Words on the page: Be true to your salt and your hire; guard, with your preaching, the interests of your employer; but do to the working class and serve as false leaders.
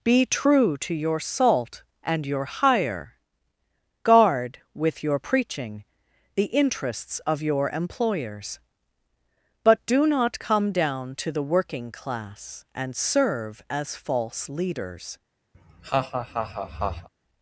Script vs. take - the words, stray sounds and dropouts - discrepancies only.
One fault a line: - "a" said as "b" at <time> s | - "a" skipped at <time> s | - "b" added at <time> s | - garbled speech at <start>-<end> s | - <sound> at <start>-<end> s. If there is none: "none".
- "employer" said as "employers" at 7.7 s
- "not come down" added at 10.1 s
- laugh at 15.5-17.1 s